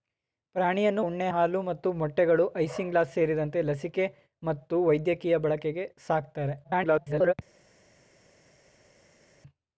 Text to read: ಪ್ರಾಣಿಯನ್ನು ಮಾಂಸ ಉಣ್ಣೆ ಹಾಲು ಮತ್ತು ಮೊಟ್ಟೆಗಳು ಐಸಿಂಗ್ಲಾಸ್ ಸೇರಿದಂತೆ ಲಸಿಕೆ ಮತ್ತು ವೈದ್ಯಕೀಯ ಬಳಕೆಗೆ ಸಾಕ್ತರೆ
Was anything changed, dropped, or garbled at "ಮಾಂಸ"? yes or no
yes